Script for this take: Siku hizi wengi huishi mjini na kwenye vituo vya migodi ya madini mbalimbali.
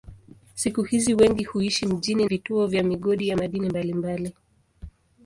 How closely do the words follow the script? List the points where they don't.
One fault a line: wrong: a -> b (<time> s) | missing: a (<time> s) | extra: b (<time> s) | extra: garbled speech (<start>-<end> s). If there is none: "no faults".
missing: na kwenye (2.2 s)